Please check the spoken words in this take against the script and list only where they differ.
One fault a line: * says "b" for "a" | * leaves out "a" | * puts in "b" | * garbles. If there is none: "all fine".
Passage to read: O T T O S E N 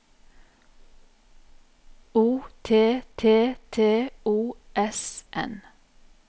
* puts in "T"
* leaves out "E"